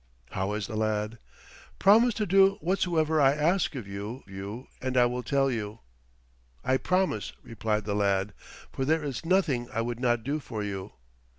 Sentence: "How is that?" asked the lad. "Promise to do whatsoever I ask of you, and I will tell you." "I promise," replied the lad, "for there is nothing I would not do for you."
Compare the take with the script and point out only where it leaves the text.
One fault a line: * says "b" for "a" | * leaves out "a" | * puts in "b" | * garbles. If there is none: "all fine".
* leaves out "that asked"
* puts in "you"